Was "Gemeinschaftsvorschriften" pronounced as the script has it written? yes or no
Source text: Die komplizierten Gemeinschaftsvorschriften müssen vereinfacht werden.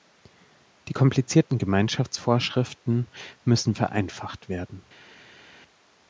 yes